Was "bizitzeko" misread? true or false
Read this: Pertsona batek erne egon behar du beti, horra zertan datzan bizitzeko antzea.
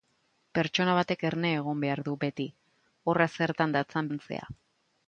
true